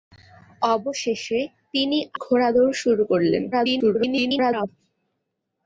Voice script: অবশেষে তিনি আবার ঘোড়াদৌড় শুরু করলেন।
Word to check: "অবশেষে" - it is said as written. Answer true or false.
true